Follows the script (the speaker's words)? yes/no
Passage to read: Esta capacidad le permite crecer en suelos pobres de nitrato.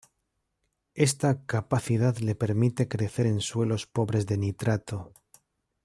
yes